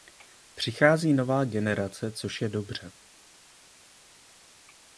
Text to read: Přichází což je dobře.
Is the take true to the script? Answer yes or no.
no